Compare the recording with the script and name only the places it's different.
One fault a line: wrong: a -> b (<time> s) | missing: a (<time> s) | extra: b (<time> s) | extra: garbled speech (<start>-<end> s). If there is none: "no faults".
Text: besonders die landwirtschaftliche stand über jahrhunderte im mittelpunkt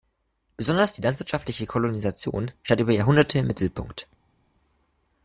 extra: kolonisation (1.7 s)